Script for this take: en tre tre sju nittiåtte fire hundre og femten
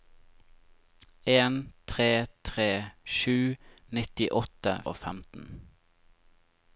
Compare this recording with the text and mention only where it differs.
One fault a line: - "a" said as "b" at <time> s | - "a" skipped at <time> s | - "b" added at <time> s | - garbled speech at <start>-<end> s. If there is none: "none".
- "fire hundre" skipped at 4.7 s